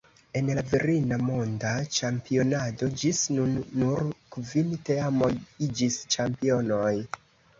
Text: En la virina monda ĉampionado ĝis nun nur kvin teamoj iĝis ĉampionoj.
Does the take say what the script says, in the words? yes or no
yes